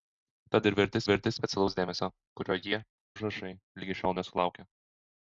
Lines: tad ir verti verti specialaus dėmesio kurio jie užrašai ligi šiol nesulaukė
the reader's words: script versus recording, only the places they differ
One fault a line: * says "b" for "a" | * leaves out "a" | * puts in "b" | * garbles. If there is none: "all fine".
all fine